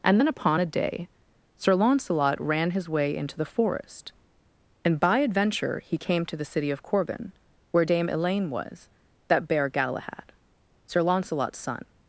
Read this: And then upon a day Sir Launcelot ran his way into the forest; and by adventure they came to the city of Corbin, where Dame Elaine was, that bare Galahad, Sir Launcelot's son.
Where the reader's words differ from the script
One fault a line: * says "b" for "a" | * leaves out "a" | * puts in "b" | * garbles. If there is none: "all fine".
* says "he" for "they"